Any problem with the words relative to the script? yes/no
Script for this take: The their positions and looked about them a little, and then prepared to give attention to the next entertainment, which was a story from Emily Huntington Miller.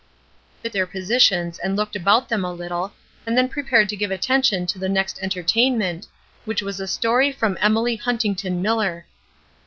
no